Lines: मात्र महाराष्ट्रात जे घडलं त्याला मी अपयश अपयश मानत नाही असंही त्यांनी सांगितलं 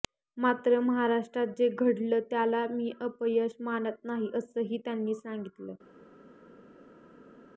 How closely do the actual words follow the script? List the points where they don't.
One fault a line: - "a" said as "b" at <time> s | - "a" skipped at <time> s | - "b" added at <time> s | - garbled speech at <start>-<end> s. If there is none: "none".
- "अपयश" skipped at 3.5 s